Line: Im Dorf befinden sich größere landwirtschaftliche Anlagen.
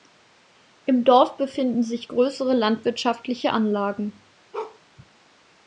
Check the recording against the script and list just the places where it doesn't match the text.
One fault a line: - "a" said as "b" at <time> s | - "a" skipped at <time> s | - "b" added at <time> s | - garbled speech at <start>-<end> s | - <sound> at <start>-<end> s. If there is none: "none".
- bark at 4.5-4.8 s